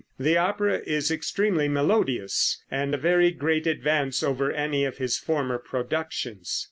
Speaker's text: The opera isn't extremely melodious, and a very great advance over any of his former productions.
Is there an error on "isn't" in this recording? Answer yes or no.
yes